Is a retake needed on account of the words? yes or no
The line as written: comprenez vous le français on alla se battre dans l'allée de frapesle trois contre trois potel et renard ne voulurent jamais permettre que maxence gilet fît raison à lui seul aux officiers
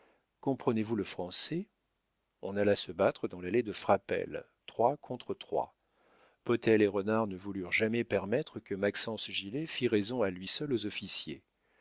no